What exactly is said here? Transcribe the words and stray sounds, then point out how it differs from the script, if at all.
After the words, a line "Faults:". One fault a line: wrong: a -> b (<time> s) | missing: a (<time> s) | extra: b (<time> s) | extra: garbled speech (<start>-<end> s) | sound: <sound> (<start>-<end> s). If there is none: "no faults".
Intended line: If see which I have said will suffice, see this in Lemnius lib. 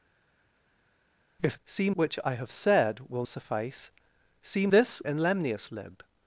If see which I have said will suffice, see this in Lemnius lib.
Faults:
no faults